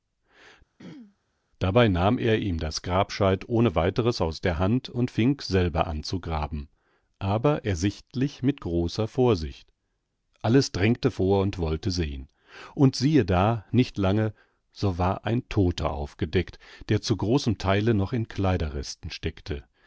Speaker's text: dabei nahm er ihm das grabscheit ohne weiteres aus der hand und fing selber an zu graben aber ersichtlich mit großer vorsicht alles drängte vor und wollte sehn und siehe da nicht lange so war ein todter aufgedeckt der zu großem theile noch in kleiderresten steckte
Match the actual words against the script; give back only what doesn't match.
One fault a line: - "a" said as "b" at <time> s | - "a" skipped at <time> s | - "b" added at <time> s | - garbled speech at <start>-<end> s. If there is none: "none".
none